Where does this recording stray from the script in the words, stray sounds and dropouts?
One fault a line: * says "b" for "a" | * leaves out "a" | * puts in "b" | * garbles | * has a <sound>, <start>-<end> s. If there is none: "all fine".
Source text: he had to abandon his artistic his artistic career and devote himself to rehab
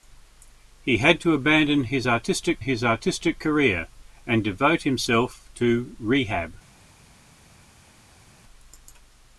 all fine